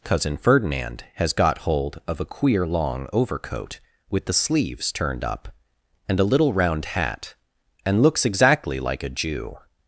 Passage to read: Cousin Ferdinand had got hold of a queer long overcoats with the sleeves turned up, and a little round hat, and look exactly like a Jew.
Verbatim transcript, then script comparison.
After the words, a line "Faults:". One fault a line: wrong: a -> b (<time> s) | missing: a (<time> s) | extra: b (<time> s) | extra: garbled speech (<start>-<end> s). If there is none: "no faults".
Cousin Ferdinand has got hold of a queer long overcoat with the sleeves turned up, and a little round hat, and looks exactly like a Jew.
Faults:
wrong: had -> has (1.1 s)
wrong: overcoats -> overcoat (3.1 s)
wrong: look -> looks (8.0 s)